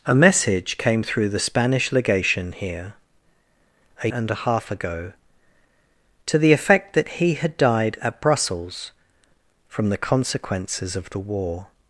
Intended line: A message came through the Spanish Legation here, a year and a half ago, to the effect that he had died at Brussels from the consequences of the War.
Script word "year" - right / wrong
wrong